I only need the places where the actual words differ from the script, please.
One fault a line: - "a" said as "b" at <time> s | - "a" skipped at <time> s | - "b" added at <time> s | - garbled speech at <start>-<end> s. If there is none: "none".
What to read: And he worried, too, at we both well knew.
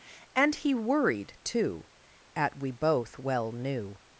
none